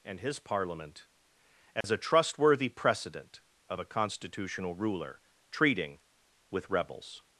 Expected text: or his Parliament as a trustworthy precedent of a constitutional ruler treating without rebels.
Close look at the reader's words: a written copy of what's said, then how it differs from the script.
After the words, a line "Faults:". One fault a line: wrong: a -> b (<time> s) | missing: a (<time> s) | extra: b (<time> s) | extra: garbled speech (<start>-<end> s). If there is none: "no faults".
and his Parliament as a trustworthy precedent of a constitutional ruler treating with rebels.
Faults:
wrong: or -> and (0.0 s)
wrong: without -> with (6.5 s)